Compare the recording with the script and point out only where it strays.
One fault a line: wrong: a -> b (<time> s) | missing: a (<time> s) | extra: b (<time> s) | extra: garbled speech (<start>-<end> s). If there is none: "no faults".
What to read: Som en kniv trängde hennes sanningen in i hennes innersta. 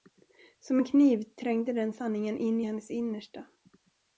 wrong: hennes -> den (1.7 s)